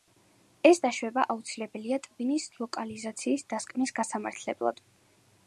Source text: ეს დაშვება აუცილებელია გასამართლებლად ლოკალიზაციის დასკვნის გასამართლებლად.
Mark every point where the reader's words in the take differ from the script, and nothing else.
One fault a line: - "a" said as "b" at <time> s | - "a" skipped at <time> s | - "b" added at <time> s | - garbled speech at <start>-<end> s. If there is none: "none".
- "გასამართლებლად" said as "ტვინის" at 2.1 s